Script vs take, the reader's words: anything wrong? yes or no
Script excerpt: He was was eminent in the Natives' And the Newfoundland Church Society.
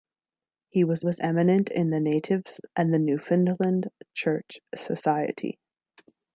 no